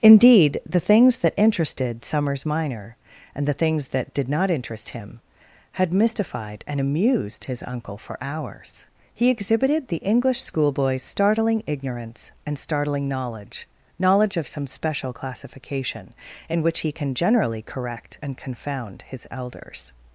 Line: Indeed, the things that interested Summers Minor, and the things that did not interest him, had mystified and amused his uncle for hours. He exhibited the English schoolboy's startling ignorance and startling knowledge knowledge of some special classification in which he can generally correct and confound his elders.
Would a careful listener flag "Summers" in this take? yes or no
no